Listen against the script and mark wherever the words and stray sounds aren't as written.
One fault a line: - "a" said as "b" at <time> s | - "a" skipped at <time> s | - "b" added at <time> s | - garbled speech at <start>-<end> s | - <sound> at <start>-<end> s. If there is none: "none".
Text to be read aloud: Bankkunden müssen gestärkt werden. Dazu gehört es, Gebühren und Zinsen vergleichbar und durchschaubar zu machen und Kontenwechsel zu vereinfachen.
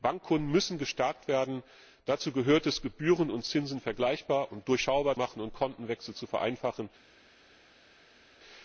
- "zu" skipped at 5.2 s